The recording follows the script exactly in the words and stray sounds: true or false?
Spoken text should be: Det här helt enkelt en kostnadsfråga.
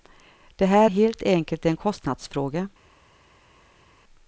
true